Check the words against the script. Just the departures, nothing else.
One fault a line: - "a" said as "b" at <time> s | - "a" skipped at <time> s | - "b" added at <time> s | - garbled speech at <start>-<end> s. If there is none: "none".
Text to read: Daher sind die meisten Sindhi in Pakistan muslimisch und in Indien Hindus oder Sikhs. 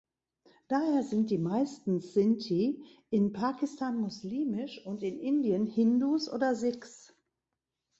none